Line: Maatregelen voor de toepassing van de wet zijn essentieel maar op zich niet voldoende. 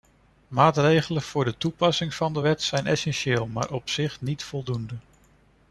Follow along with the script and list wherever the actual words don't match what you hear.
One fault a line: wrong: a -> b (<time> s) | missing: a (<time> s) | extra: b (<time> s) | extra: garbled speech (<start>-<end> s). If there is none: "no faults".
no faults